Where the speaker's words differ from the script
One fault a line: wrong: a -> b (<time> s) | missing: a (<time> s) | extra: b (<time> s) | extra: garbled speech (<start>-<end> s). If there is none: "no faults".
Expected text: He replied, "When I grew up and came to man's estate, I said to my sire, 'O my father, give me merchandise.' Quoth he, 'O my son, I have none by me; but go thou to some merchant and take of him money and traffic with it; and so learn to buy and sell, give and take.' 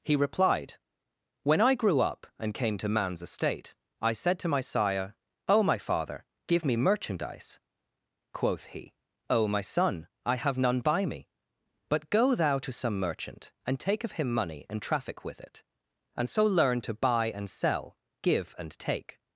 no faults